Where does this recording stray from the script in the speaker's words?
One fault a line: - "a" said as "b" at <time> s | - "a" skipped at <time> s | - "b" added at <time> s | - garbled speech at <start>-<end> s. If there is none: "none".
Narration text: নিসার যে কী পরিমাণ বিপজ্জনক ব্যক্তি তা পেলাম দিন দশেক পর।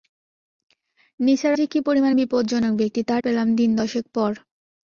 none